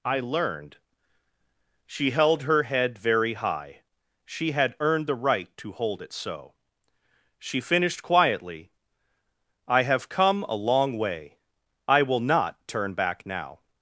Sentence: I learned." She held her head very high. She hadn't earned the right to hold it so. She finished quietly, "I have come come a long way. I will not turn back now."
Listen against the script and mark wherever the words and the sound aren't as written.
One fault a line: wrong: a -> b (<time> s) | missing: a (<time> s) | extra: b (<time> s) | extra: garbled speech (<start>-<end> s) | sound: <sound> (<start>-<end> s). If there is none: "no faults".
wrong: hadn't -> had (4.5 s)
missing: come (10.4 s)